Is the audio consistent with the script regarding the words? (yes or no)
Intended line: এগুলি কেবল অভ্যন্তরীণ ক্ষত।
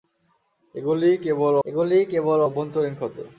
no